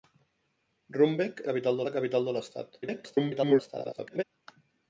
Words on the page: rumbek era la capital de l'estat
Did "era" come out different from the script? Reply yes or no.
yes